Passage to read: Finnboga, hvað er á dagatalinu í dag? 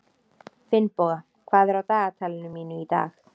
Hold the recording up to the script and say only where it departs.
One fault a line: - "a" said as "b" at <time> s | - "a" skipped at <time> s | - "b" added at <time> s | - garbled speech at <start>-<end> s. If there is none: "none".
- "mínu" added at 2.6 s